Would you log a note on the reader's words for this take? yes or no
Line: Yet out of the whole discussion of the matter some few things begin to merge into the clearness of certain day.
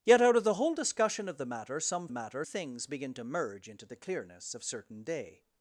yes